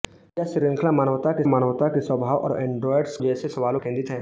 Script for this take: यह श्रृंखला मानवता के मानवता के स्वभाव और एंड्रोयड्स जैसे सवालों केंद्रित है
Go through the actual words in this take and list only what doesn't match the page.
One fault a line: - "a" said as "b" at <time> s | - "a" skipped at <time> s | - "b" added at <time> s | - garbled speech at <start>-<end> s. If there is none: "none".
none